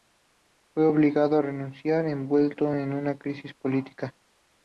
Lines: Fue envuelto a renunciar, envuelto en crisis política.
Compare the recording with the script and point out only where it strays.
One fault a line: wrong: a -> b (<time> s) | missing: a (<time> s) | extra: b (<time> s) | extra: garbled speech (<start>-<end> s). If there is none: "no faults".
wrong: envuelto -> obligado (0.9 s)
extra: una (2.9 s)